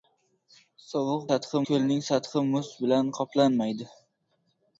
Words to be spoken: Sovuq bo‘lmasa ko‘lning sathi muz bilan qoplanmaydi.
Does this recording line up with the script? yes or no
no